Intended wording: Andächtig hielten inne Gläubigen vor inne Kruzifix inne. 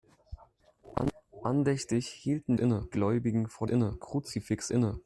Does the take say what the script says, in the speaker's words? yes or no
yes